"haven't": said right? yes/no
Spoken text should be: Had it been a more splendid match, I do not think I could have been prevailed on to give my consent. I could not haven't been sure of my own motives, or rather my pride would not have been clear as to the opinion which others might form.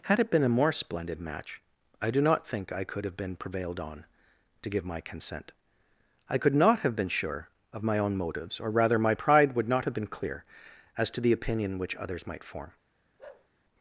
no